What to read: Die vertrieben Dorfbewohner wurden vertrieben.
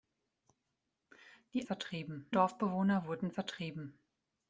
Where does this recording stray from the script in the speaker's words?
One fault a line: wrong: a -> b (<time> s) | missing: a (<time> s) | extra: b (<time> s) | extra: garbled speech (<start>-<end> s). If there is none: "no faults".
no faults